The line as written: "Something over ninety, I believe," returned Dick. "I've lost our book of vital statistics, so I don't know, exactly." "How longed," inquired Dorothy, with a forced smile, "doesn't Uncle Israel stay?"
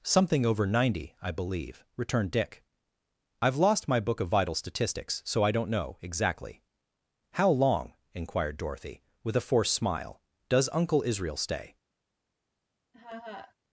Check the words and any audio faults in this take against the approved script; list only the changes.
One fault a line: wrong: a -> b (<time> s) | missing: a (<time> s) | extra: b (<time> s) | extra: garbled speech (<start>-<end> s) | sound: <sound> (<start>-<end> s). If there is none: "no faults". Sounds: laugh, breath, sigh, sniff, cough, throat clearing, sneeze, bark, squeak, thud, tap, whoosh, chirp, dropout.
wrong: our -> my (3.9 s)
wrong: longed -> long (7.5 s)
wrong: doesn't -> does (10.5 s)
sound: laugh (12.9-13.5 s)